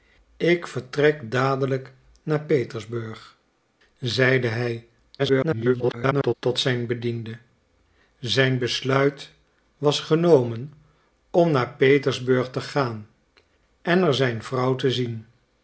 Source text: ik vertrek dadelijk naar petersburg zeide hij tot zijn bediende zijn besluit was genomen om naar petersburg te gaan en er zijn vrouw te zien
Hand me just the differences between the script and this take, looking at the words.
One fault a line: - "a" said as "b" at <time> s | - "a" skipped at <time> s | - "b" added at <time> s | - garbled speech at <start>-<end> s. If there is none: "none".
- garbled speech at 5.2-6.3 s